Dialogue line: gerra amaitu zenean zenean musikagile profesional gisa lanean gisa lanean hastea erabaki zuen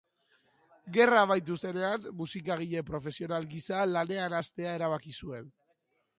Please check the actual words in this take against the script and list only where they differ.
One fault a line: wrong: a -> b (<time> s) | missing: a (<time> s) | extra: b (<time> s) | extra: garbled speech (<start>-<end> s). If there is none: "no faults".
missing: zenean (2.1 s)
missing: gisa lanean (4.4 s)